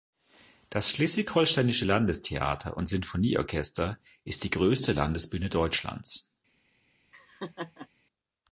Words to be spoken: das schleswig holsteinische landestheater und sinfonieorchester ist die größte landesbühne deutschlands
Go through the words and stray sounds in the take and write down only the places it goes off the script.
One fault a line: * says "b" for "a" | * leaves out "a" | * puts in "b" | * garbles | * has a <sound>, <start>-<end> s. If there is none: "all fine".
* has a laugh, 7.1-7.9 s